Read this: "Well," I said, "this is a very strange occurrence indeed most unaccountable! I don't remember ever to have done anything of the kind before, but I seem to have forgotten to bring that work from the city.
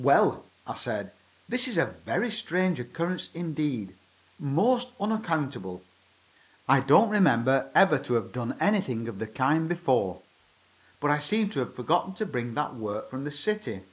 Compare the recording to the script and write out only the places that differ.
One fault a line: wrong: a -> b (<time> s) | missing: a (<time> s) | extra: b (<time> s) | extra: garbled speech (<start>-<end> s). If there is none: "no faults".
no faults